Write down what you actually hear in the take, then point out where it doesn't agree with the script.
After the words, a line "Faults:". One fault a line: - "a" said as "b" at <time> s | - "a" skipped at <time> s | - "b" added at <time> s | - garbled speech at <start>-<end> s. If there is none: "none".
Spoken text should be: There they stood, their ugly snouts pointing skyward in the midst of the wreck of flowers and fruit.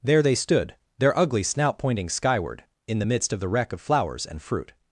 There they stood, their ugly snout pointing skyward in the midst of the wreck of flowers and fruit.
Faults:
- "snouts" said as "snout" at 1.4 s